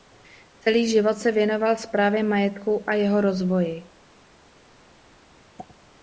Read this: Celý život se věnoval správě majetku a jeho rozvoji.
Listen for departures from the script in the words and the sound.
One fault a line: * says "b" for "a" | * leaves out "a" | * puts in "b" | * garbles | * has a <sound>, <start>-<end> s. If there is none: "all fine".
all fine